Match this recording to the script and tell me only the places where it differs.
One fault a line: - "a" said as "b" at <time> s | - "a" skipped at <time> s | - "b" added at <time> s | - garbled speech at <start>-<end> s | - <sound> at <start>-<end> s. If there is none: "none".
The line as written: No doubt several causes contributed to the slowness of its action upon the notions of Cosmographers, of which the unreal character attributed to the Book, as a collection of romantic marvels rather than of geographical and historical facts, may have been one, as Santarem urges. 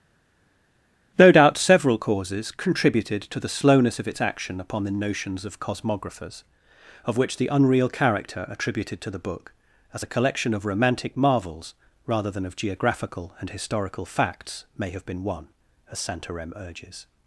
none